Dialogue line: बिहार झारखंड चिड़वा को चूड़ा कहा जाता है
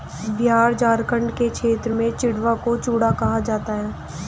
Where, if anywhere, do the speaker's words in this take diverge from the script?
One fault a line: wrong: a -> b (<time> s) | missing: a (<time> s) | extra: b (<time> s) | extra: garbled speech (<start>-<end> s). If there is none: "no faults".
extra: के क्षेत्र में (1.3 s)